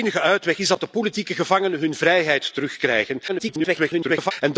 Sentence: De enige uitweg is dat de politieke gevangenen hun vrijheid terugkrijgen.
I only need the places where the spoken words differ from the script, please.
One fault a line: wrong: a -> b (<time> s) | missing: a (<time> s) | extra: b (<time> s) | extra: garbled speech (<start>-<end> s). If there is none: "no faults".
extra: garbled speech (3.3-4.3 s)